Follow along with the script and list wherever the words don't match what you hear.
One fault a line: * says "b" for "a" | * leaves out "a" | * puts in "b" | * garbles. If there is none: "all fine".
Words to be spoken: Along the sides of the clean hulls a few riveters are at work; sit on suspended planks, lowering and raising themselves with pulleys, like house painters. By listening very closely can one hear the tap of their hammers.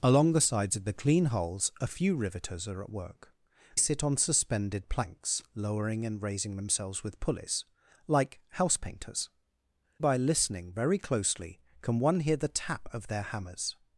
all fine